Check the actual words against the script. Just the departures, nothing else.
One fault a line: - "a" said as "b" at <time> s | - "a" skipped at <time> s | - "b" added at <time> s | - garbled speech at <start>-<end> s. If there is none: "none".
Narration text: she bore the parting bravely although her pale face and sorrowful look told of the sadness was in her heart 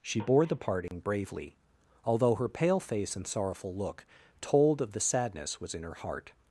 none